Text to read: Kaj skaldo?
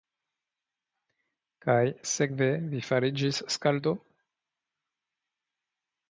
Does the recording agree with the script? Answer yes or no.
no